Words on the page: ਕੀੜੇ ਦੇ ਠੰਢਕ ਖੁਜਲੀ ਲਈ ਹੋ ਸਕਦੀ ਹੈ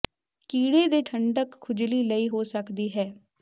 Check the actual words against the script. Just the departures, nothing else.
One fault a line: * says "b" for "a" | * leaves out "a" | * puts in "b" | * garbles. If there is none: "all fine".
all fine